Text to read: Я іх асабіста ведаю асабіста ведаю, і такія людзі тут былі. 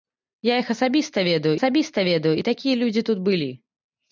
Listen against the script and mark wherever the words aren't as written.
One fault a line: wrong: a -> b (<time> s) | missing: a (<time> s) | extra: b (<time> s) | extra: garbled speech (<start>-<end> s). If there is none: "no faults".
no faults